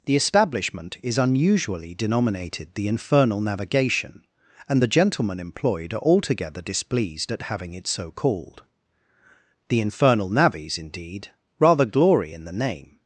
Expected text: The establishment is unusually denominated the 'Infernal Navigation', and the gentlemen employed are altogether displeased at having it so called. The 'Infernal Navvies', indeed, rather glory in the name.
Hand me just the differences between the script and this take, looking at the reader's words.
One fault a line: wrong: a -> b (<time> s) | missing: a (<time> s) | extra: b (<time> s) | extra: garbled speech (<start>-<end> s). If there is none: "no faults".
no faults